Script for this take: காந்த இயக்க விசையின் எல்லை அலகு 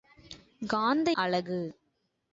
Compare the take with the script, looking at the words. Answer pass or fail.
fail